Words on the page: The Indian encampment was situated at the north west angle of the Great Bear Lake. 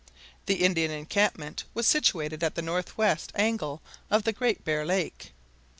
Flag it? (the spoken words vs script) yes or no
no